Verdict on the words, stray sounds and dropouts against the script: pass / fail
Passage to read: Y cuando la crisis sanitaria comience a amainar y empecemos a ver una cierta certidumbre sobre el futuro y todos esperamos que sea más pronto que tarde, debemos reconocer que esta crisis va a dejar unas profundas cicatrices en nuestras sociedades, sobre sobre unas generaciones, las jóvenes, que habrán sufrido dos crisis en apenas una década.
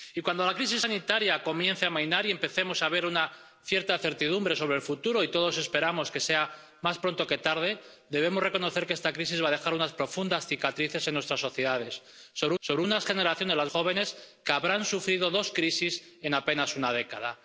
pass